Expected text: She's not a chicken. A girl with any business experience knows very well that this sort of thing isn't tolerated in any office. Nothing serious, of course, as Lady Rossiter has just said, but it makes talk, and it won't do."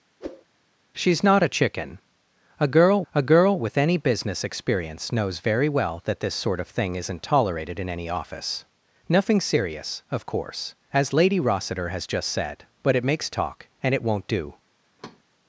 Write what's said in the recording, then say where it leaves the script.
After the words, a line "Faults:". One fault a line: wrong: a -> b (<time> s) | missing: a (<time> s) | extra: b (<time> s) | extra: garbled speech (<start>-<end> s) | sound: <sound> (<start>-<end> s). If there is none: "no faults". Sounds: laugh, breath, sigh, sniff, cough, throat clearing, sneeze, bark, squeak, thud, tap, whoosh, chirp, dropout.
She's not a chicken. A girl a girl with any business experience knows very well that this sort of thing isn't tolerated in any office. Nothing serious, of course, as Lady Rossiter has just said, but it makes talk, and it won't do."
Faults:
sound: whoosh (0.2-0.4 s)
extra: a girl (3.1 s)
sound: thud (15.0-15.2 s)